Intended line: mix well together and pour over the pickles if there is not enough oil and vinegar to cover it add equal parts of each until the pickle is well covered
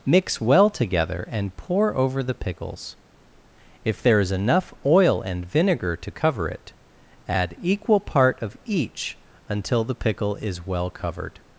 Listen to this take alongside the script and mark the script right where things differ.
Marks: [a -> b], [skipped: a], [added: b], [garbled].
mix well together and pour over the pickles if there is [skipped: not] enough oil and vinegar to cover it add equal [parts -> part] of each until the pickle is well covered